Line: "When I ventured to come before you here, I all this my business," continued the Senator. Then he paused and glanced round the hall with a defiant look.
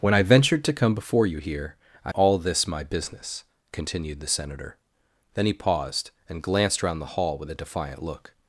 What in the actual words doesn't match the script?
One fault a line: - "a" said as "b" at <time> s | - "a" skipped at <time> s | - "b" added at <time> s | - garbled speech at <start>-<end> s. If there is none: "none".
none